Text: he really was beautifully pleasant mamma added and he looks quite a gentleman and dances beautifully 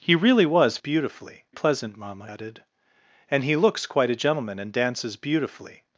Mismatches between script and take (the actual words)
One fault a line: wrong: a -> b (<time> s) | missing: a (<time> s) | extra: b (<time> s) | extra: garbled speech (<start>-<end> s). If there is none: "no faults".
no faults